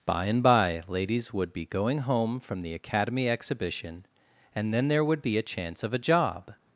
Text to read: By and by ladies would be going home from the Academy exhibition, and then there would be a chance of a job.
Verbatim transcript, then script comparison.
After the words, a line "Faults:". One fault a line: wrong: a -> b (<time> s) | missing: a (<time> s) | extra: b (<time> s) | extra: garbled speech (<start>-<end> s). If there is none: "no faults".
By and by ladies would be going home from the Academy exhibition, and then there would be a chance of a job.
Faults:
no faults